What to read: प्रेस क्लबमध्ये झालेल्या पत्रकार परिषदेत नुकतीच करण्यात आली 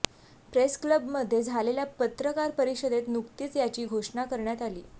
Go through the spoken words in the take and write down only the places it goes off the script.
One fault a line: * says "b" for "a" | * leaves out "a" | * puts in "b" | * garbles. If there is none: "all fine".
* puts in "याची घोषणा"